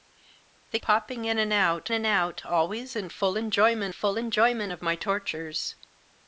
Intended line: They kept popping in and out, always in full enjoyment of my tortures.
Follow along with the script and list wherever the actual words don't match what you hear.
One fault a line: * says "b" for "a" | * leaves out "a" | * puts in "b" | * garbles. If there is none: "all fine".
* leaves out "kept"
* puts in "and out"
* puts in "full enjoyment"